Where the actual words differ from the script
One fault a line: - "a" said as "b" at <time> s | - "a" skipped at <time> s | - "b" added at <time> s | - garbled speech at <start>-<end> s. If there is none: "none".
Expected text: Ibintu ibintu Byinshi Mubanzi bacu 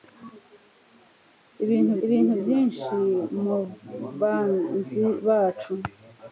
none